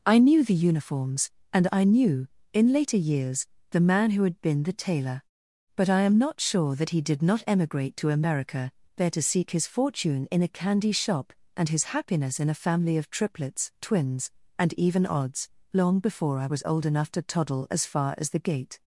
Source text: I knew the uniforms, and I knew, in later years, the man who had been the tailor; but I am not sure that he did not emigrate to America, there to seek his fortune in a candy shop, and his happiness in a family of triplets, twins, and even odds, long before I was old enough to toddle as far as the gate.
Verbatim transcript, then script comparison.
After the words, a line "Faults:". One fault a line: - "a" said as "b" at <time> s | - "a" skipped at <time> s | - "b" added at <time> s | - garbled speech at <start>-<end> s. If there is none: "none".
I knew the uniforms, and I knew, in later years, the man who had been the tailor; but I am not sure that he did not emigrate to America, there to seek his fortune in a candy shop, and his happiness in a family of triplets, twins, and even odds, long before I was old enough to toddle as far as the gate.
Faults:
none